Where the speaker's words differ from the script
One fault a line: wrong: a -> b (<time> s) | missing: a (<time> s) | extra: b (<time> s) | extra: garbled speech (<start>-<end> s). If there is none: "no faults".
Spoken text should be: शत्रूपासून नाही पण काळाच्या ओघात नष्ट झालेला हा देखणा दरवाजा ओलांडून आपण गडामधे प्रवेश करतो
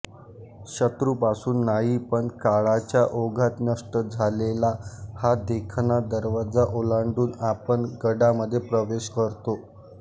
no faults